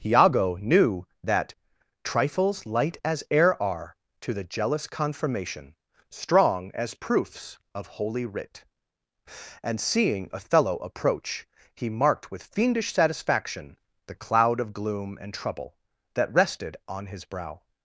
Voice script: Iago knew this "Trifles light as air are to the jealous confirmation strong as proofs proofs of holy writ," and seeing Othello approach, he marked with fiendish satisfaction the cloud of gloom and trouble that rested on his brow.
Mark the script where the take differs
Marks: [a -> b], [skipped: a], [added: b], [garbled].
Iago knew [this -> that] "Trifles light as air are to the jealous confirmation strong as proofs [skipped: proofs] of holy writ," and seeing Othello approach, he marked with fiendish satisfaction the cloud of gloom and trouble that rested on his brow.